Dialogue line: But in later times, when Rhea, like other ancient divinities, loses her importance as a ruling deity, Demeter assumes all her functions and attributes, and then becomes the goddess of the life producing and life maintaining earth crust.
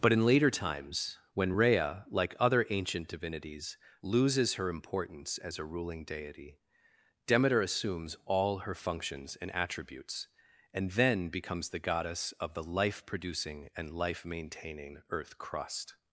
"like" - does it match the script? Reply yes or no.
yes